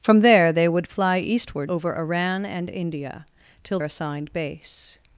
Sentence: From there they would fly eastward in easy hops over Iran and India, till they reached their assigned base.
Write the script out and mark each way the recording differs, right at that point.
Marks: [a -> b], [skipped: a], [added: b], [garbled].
From there they would fly eastward [skipped: in easy hops] over Iran and India, till [skipped: they reached their] assigned base.